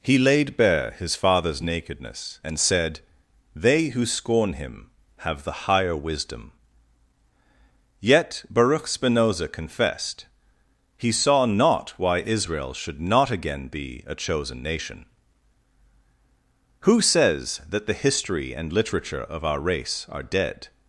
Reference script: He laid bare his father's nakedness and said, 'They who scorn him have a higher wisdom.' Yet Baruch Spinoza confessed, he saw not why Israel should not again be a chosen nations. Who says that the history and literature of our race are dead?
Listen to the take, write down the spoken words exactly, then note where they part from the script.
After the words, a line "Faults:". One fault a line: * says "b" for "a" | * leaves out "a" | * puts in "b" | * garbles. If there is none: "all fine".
He laid bare his father's nakedness and said, 'They who scorn him have the higher wisdom.' Yet Baruch Spinoza confessed, he saw not why Israel should not again be a chosen nation. Who says that the history and literature of our race are dead?
Faults:
* says "the" for "a"
* says "nation" for "nations"